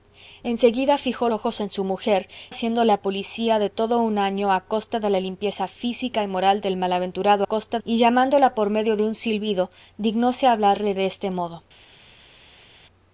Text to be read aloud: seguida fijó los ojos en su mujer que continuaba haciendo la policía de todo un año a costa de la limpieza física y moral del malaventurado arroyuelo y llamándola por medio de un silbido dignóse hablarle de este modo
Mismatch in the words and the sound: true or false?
true